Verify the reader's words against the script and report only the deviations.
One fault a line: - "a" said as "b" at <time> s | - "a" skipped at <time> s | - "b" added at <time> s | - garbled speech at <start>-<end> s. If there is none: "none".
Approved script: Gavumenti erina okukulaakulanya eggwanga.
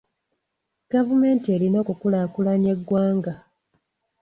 none